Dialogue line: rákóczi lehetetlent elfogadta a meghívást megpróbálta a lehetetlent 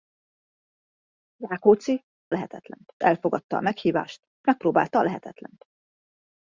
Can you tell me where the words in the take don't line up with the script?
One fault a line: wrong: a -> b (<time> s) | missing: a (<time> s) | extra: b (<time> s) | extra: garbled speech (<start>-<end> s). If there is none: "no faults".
no faults